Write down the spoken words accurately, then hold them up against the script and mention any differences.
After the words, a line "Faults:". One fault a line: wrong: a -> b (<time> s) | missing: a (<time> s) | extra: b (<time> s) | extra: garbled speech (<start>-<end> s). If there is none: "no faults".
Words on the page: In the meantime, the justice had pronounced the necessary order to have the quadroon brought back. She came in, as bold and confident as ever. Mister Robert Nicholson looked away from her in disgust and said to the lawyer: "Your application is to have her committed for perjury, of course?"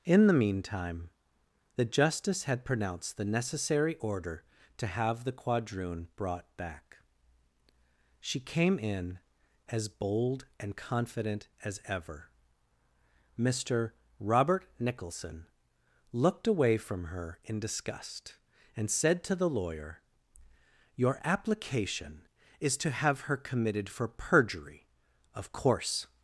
In the meantime, the justice had pronounced the necessary order to have the quadroon brought back. She came in, as bold and confident as ever. Mister Robert Nicholson looked away from her in disgust and said to the lawyer: "Your application is to have her committed for perjury, of course?"
Faults:
no faults